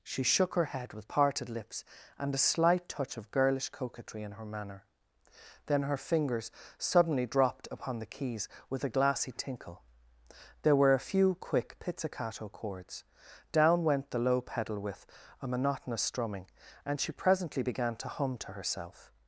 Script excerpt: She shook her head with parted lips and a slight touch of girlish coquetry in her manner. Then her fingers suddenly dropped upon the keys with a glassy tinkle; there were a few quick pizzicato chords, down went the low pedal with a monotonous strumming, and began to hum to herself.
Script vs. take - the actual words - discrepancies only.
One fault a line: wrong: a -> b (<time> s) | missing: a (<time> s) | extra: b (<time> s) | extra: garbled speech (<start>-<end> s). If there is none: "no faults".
extra: she presently (17.0 s)